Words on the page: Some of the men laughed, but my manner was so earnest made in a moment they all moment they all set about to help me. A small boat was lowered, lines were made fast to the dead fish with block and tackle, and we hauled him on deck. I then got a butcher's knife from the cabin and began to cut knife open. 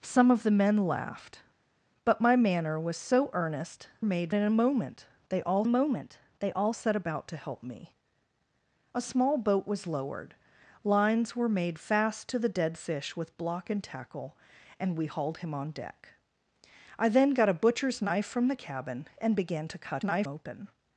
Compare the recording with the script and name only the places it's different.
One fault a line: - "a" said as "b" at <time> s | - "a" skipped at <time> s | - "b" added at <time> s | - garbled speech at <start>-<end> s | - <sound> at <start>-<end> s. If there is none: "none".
none